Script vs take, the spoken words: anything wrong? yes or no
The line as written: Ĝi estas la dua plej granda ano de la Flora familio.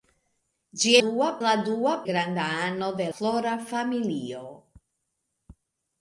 yes